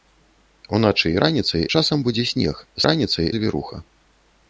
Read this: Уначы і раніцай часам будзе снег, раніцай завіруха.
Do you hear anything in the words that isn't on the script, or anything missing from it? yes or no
no